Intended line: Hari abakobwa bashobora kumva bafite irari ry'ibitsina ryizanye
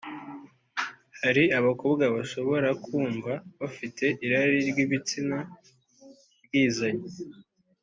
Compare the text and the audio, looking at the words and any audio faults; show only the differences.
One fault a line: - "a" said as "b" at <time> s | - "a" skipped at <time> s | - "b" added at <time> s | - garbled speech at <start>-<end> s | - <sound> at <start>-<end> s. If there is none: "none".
none